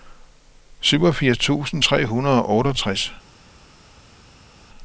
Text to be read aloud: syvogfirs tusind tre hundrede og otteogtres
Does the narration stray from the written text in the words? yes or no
no